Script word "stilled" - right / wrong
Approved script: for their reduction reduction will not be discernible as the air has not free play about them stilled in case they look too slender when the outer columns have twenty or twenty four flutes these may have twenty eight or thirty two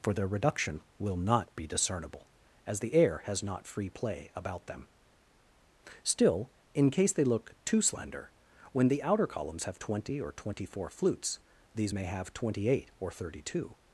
wrong